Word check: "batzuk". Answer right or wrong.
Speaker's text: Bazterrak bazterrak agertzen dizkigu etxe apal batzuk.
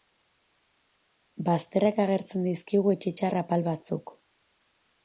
right